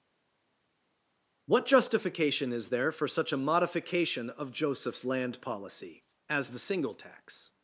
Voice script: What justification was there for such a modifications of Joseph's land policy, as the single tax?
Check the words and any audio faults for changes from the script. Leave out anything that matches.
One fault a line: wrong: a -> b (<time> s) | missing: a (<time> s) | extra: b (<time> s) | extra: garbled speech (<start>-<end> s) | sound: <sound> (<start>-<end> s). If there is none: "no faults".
wrong: was -> is (2.5 s)
wrong: modifications -> modification (3.4 s)